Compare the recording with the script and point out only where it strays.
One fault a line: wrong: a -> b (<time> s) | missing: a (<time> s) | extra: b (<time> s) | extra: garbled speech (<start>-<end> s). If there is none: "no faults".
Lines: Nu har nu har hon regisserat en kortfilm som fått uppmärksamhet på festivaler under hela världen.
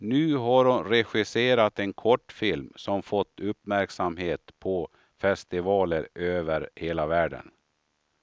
missing: nu har (0.7 s)
wrong: under -> över (6.2 s)